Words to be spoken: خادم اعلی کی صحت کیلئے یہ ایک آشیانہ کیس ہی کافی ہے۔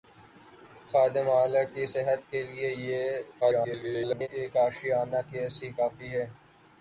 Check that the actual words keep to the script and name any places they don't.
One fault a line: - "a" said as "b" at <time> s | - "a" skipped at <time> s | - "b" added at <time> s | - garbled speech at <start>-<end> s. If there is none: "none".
- garbled speech at 3.4-4.3 s